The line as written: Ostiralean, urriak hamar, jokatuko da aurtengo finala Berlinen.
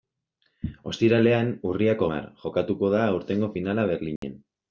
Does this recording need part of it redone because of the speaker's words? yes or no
no